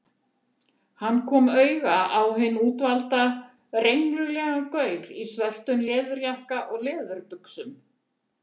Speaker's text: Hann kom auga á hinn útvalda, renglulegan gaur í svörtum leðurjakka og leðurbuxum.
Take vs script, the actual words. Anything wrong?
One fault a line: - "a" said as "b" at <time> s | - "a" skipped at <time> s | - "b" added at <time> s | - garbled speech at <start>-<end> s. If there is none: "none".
none